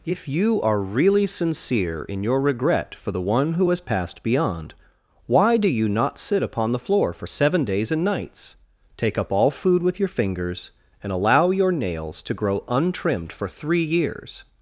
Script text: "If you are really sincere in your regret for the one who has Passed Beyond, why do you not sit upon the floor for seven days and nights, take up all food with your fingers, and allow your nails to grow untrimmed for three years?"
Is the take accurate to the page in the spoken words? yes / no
yes